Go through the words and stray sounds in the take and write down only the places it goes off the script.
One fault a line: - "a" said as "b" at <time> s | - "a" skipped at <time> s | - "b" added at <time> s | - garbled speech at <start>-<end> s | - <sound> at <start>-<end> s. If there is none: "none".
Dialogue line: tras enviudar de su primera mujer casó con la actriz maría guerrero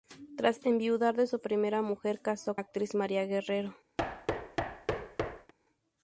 - "con" skipped at 2.6 s
- thud at 4.0-5.5 s